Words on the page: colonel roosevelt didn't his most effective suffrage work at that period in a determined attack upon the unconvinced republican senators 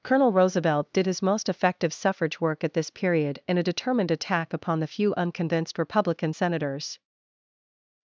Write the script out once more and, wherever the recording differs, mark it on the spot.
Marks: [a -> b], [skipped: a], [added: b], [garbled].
colonel roosevelt [didn't -> did] his most effective suffrage work at [that -> this] period in a determined attack upon the [added: few] unconvinced republican senators